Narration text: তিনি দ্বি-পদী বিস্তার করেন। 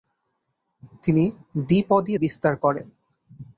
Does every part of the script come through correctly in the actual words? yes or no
yes